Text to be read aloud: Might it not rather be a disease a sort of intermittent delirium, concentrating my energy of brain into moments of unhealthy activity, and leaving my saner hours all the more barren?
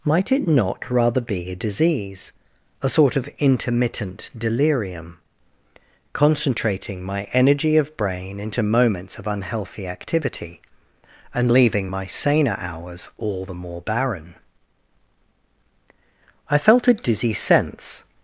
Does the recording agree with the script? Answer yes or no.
no